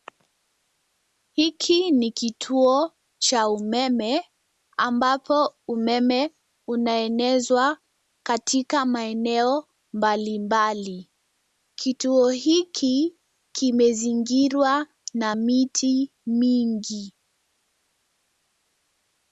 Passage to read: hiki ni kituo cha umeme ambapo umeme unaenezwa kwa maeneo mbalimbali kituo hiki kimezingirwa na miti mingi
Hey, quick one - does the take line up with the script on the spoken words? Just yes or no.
no